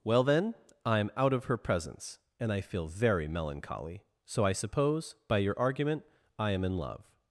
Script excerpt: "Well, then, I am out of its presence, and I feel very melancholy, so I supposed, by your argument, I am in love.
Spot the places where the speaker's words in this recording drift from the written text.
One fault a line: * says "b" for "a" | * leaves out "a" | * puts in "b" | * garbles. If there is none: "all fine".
* says "her" for "its"
* says "suppose" for "supposed"